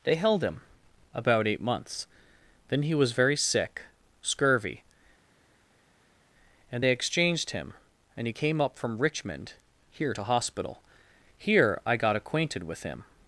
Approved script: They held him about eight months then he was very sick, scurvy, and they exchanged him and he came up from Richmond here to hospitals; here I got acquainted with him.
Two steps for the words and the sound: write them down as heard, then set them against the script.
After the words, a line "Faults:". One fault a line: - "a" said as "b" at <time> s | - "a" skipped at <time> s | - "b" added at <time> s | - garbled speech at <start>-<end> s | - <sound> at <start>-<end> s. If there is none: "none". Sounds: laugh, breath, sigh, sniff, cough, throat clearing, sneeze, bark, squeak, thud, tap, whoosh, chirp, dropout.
They held him about eight months then he was very sick, scurvy, and they exchanged him and he came up from Richmond here to hospital; here I got acquainted with him.
Faults:
- "hospitals" said as "hospital" at 10.2 s